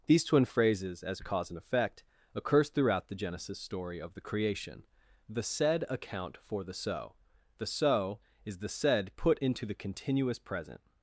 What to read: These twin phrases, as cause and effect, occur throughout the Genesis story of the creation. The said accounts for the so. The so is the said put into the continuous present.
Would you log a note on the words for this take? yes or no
yes